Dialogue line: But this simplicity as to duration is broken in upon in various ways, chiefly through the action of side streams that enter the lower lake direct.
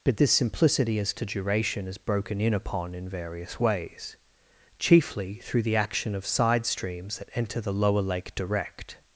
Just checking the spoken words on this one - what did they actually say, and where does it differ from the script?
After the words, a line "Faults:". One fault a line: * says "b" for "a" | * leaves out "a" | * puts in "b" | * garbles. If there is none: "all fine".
But this simplicity as to duration is broken in upon in various ways, chiefly through the action of side streams that enter the lower lake direct.
Faults:
all fine